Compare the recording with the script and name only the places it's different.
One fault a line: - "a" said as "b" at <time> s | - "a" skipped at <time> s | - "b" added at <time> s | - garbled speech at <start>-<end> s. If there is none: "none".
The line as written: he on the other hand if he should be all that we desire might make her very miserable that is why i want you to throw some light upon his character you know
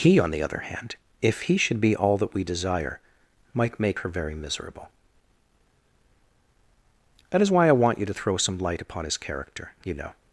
none